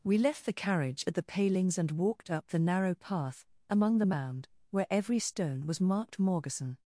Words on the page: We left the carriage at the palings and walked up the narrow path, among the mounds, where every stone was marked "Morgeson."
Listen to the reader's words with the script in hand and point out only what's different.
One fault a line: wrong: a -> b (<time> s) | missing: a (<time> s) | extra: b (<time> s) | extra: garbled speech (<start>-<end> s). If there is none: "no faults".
wrong: mounds -> mound (4.0 s)